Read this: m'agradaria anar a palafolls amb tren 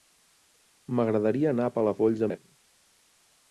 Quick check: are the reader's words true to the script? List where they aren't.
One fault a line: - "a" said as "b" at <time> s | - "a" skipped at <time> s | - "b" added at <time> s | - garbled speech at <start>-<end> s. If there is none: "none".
- "amb" skipped at 2.3 s